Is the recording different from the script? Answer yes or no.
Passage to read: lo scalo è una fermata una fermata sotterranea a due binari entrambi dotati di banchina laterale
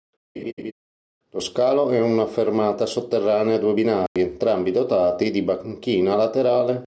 yes